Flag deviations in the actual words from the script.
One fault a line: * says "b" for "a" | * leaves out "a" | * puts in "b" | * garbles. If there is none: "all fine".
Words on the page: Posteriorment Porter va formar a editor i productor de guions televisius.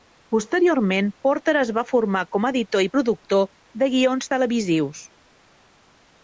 * puts in "es"
* puts in "com"